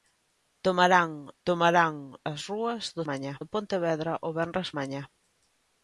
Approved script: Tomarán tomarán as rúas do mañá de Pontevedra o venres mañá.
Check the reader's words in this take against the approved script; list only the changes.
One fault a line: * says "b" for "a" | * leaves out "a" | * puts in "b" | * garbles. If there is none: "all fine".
all fine